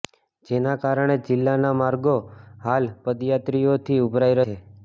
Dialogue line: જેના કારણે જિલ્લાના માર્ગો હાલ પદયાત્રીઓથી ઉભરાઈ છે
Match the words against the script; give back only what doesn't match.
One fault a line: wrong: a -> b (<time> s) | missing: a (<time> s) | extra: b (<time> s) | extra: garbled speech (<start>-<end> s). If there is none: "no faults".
no faults